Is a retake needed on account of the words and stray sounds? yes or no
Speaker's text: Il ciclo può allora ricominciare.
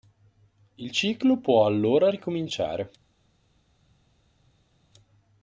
no